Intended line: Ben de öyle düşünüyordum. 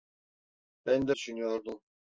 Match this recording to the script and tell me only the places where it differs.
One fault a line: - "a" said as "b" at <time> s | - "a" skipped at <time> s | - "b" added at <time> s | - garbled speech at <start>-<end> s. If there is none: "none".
- "öyle" skipped at 1.1 s